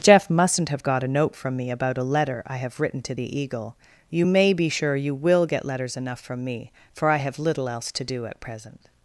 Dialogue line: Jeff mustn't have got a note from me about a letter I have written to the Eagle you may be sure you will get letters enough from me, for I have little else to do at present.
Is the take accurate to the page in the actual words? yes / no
yes